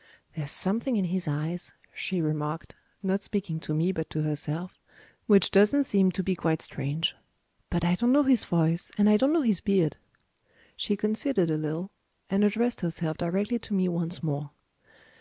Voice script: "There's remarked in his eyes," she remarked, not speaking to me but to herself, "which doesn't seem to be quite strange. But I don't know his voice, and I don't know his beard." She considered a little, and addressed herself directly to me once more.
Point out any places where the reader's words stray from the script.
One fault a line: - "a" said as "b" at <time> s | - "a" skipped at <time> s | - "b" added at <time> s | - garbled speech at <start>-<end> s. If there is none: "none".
- "remarked" said as "something" at 0.5 s